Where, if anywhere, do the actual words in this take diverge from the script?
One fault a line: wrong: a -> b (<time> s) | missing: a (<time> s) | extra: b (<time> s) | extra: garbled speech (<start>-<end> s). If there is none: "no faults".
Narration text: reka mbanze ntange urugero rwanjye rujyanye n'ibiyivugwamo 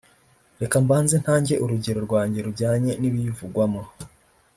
no faults